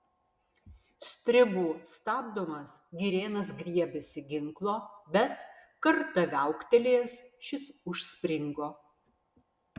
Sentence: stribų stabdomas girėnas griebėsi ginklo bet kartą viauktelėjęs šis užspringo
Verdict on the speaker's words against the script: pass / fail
pass